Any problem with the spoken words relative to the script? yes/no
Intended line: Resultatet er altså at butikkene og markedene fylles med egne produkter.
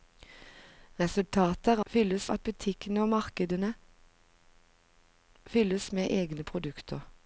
yes